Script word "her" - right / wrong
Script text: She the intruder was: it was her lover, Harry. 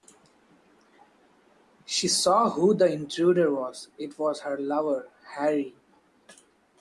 right